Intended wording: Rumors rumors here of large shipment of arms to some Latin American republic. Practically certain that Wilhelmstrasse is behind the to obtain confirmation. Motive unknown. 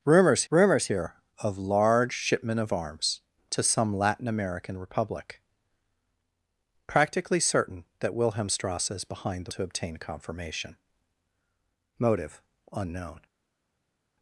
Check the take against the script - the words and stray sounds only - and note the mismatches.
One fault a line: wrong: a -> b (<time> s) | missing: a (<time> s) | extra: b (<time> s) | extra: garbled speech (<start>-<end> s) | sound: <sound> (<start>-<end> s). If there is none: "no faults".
no faults